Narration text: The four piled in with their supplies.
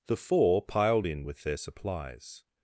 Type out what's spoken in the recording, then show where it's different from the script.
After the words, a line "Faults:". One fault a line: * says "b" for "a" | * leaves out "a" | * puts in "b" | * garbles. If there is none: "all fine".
The four piled in with their supplies.
Faults:
all fine